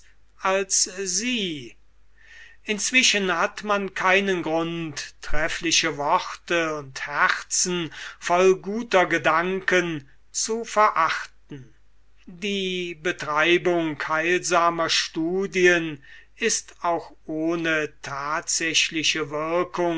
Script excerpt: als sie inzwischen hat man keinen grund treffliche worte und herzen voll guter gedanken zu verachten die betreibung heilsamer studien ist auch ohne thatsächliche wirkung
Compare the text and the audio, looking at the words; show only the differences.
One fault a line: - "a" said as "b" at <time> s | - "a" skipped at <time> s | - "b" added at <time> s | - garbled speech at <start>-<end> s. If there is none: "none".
none